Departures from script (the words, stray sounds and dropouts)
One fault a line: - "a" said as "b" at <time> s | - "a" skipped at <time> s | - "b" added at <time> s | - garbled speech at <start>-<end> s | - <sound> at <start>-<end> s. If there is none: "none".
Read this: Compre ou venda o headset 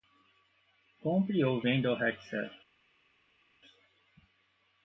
none